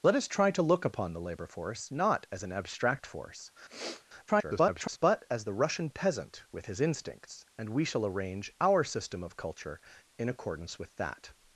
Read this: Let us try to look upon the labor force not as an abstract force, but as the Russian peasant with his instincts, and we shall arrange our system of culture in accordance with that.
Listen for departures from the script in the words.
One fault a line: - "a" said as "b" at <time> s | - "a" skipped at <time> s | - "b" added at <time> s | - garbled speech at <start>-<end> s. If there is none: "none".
- garbled speech at 4.3-5.0 s